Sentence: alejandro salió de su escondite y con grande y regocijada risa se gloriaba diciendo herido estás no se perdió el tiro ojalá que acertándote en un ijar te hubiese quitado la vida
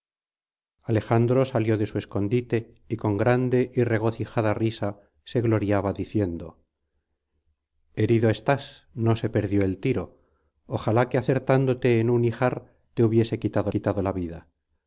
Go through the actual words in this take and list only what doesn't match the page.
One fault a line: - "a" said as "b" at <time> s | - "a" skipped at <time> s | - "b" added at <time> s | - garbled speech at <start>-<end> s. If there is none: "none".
- "quitado" added at 13.7 s